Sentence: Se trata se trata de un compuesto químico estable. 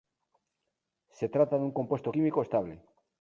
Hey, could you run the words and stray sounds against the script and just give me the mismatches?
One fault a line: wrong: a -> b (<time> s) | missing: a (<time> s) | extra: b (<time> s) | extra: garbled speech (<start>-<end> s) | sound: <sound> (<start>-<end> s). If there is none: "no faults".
missing: se trata (1.6 s)